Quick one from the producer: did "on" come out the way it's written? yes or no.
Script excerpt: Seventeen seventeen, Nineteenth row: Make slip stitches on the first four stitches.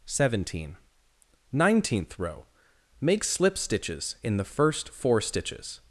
no